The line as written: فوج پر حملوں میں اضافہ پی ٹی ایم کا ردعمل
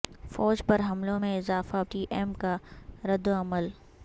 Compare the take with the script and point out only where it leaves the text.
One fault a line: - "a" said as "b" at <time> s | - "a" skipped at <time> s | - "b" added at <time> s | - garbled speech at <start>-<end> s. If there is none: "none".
- "پی" skipped at 1.8 s